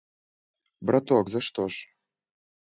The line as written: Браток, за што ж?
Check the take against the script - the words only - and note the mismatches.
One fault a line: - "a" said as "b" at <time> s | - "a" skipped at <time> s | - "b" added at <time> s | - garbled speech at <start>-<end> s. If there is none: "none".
none